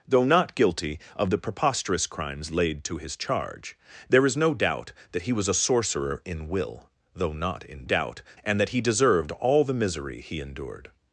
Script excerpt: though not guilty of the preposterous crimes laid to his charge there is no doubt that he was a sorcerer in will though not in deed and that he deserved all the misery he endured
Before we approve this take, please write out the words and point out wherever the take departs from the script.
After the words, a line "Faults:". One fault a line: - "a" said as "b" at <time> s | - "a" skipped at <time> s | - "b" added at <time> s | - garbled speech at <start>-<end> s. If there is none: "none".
though not guilty of the preposterous crimes laid to his charge there is no doubt that he was a sorcerer in will though not in doubt and that he deserved all the misery he endured
Faults:
- "deed" said as "doubt" at 7.8 s